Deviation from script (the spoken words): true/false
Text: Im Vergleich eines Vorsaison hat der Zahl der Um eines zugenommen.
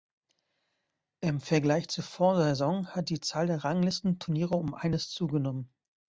true